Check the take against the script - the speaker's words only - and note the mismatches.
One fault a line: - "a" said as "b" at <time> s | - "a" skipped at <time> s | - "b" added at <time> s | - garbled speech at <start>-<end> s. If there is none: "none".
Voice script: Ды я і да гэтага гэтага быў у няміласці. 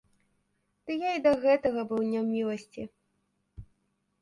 - "гэтага" skipped at 1.8 s